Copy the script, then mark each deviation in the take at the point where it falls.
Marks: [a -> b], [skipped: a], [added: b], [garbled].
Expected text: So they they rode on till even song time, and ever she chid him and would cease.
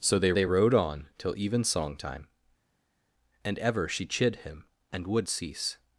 So they they rode on till even song time, and ever she chid him and would cease.